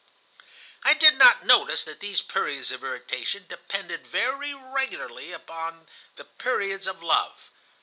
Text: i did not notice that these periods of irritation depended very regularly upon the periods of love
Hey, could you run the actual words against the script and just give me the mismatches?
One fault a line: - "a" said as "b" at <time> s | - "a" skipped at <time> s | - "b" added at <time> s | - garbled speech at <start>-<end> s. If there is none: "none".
none